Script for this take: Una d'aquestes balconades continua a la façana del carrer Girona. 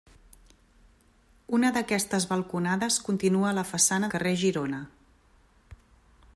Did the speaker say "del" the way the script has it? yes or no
no